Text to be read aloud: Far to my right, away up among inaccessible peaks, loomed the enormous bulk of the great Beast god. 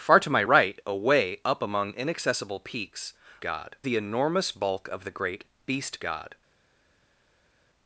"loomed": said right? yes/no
no